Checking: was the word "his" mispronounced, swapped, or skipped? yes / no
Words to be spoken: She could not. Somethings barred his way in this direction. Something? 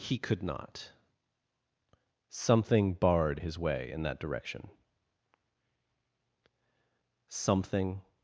no